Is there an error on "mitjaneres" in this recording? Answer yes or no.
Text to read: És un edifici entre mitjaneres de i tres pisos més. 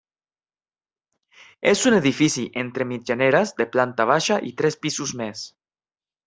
no